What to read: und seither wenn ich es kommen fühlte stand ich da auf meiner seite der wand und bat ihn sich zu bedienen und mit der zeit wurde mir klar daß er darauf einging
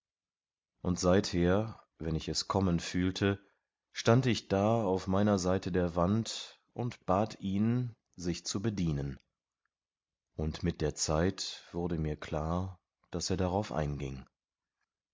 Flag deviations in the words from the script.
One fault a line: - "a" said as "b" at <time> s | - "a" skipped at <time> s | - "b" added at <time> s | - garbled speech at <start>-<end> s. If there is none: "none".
none